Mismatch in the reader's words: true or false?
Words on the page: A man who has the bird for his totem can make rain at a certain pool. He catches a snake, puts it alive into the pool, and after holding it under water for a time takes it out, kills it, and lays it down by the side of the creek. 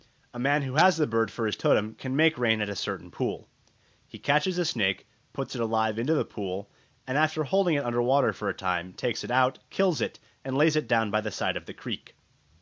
false